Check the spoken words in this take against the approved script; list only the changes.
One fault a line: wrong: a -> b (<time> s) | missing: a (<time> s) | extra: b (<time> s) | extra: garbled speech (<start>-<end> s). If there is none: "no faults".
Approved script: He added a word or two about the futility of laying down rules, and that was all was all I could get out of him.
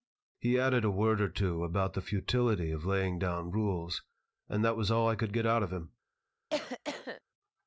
missing: was all (5.1 s)